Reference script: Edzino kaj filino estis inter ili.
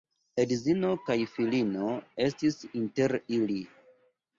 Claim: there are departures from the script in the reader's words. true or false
false